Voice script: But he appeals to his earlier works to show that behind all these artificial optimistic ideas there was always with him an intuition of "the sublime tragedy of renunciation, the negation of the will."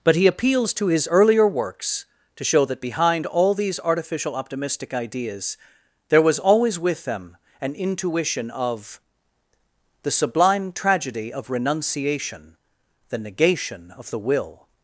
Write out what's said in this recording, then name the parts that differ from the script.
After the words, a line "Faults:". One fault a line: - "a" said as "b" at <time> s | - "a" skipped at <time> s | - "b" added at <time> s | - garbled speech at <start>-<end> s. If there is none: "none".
But he appeals to his earlier works to show that behind all these artificial optimistic ideas there was always with them an intuition of "the sublime tragedy of renunciation, the negation of the will."
Faults:
- "him" said as "them" at 7.0 s